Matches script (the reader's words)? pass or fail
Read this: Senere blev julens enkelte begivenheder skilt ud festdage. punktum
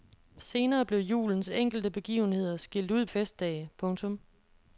pass